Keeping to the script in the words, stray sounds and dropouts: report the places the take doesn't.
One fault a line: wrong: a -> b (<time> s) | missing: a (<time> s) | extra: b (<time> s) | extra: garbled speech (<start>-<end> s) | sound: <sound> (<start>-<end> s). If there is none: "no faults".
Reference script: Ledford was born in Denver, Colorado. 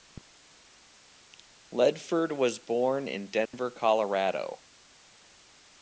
sound: dropout (3.5-3.5 s)